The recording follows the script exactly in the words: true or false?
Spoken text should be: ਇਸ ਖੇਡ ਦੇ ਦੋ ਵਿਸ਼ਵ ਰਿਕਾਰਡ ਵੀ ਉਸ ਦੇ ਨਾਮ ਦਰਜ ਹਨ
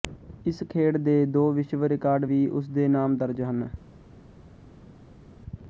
true